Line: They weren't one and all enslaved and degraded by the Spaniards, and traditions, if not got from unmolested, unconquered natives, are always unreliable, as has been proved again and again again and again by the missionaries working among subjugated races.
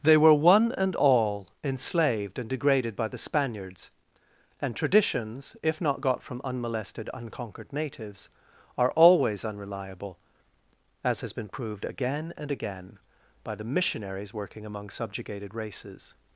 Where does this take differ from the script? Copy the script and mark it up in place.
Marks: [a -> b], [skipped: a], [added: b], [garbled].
They [weren't -> were] one and all enslaved and degraded by the Spaniards, and traditions, if not got from unmolested, unconquered natives, are always unreliable, as has been proved again and again [skipped: again and again] by the missionaries working among subjugated races.